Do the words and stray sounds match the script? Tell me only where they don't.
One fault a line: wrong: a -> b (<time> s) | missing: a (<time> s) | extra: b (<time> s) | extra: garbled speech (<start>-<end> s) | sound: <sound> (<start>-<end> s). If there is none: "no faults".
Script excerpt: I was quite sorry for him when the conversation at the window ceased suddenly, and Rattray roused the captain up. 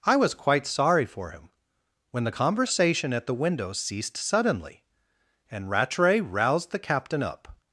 no faults